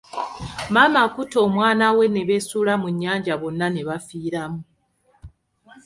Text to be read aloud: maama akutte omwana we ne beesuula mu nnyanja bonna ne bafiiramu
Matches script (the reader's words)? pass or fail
pass